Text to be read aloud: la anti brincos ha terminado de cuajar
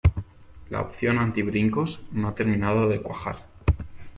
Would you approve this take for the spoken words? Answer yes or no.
no